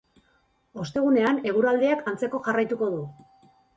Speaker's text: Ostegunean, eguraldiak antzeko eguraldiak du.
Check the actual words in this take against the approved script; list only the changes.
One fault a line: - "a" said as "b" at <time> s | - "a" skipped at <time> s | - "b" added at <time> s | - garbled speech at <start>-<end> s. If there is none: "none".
- "eguraldiak" said as "jarraituko" at 2.5 s